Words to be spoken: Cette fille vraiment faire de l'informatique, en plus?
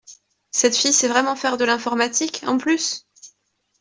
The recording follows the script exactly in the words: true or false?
false